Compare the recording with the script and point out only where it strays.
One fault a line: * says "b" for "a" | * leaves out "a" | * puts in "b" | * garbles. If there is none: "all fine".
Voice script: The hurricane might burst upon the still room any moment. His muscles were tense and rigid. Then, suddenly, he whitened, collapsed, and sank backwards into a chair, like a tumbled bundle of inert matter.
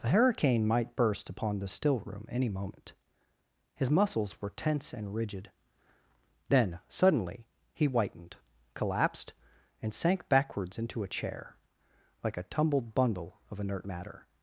all fine